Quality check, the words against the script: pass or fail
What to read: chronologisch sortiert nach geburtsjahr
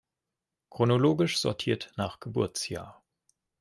pass